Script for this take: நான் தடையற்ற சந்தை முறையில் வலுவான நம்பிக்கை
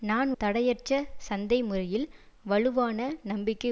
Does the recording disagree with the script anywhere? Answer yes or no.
no